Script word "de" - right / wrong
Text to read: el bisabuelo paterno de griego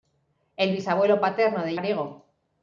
right